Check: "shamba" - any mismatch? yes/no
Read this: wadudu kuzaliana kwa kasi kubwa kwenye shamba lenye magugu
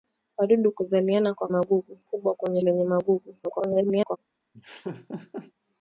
yes